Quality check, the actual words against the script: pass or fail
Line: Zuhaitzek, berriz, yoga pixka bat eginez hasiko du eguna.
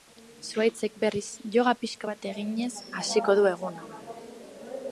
pass